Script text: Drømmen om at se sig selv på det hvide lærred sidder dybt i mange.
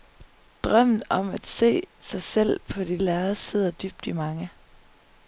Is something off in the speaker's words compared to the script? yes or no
yes